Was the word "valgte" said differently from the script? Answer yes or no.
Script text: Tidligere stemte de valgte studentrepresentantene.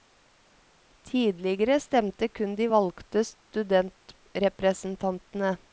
no